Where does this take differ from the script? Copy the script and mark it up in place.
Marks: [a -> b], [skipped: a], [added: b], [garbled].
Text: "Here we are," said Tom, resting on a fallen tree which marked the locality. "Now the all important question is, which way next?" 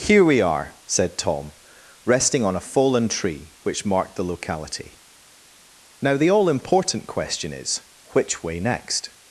"Here we are," said Tom, resting on a fallen tree which marked the locality. "Now the all important question is, which way next?"